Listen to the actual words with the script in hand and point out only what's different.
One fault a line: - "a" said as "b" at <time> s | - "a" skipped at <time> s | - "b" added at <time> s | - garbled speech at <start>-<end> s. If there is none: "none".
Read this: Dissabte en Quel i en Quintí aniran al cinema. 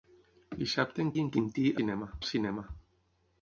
- "Quel" skipped at 1.1 s
- "aniran" said as "cinema" at 1.8 s